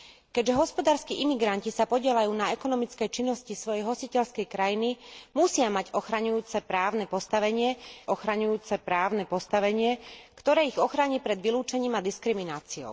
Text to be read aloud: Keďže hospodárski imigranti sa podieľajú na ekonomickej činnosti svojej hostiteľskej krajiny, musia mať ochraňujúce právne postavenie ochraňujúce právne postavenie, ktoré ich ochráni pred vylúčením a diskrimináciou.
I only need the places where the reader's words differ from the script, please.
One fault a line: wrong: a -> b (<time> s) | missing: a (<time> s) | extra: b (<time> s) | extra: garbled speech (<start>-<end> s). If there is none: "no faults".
no faults